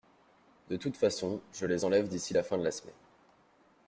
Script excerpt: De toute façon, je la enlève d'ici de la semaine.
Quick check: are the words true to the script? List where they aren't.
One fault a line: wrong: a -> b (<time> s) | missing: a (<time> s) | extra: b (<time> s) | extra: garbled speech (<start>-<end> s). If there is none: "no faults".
wrong: la -> les (1.6 s)
extra: la fin (2.3 s)